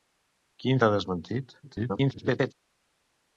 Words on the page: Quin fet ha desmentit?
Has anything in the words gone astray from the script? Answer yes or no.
yes